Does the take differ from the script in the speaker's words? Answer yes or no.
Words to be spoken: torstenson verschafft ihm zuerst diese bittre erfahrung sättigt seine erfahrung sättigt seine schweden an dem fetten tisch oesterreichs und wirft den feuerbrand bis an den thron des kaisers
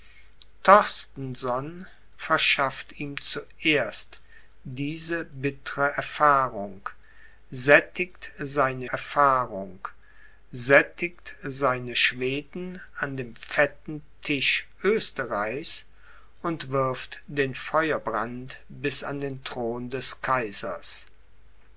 no